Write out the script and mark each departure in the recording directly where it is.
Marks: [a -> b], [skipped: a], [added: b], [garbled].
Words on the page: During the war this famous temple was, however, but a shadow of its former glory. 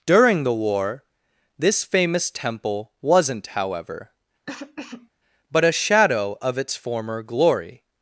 During the war this famous temple [was, -> wasn't] however, but a shadow of its former glory.